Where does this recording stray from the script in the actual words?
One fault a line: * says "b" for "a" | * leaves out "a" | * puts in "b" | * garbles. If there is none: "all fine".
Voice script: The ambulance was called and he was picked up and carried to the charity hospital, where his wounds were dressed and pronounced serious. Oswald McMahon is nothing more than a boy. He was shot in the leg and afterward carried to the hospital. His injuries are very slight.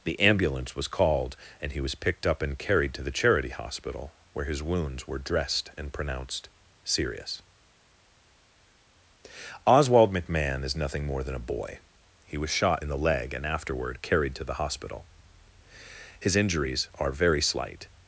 all fine